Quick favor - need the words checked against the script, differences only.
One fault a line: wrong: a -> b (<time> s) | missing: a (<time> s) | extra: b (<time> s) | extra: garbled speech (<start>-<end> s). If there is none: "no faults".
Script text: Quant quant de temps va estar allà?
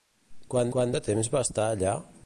no faults